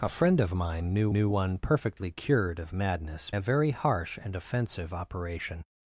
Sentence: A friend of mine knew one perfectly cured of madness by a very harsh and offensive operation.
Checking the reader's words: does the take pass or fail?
fail